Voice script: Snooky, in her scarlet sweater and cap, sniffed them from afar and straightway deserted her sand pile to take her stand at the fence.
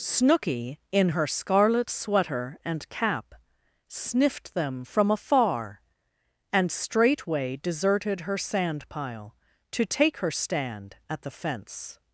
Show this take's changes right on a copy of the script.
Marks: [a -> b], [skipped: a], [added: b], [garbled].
Snooky, in her scarlet sweater and cap, sniffed them from afar and straightway deserted her sand pile to take her stand at the fence.